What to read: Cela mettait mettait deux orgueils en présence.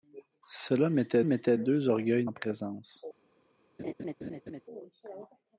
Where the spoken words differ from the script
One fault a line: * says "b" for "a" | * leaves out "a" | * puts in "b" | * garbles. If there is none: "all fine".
all fine